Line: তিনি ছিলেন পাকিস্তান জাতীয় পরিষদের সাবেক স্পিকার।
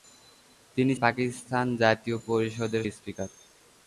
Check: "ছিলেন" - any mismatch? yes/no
yes